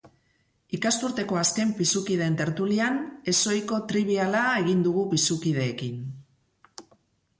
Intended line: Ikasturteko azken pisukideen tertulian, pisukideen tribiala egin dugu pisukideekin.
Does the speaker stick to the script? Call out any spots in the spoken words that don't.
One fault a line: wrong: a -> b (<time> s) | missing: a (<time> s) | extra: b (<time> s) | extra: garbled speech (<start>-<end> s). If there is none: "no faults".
wrong: pisukideen -> ezohiko (3.3 s)